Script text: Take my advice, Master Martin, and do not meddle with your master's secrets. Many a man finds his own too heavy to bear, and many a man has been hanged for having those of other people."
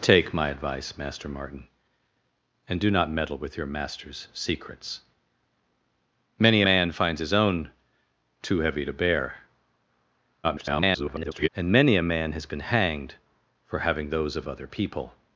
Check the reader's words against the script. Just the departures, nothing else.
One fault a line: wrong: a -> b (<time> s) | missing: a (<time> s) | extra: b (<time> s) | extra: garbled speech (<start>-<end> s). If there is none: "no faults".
missing: a (6.6 s)
extra: garbled speech (10.4-11.5 s)